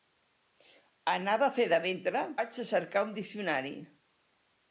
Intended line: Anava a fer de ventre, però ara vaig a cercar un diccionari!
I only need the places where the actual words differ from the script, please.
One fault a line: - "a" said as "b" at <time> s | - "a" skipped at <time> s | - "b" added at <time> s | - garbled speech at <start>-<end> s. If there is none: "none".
- "però ara" skipped at 2.2 s